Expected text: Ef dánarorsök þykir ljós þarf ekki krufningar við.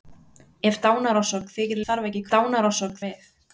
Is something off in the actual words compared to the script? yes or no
yes